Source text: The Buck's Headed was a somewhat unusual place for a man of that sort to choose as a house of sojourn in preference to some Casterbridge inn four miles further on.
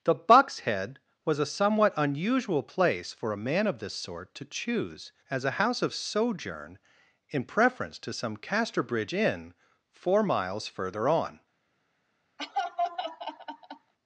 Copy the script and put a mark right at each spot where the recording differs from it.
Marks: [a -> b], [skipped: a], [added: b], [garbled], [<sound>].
The Buck's [Headed -> Head] was a somewhat unusual place for a man of [that -> this] sort to choose as a house of sojourn in preference to some Casterbridge inn four miles further on. [laugh]